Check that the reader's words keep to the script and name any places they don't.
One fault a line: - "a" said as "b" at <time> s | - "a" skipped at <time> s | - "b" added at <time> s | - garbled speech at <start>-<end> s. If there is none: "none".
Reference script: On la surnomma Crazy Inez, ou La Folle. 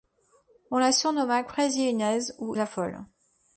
none